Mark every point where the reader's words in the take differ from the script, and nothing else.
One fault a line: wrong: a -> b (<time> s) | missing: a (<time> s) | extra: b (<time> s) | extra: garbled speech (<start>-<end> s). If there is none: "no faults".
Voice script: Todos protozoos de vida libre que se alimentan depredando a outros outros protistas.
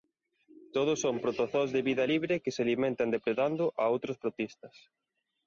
extra: son (1.0 s)
missing: outros (4.2 s)